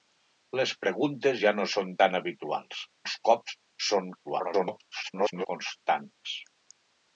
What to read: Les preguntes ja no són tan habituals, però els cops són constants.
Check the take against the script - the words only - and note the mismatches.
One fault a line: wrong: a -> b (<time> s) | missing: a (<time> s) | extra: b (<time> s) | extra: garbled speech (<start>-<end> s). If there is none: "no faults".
missing: però (2.8 s)
extra: garbled speech (4.2-5.5 s)